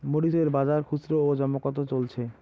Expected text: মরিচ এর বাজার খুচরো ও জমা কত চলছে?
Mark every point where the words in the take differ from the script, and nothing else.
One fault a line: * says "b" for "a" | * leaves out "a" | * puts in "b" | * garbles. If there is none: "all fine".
all fine